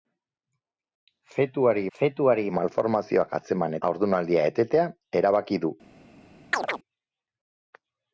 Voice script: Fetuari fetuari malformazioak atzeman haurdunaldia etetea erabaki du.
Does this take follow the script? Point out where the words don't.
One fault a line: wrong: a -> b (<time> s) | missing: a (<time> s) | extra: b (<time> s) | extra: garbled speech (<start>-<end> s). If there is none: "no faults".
no faults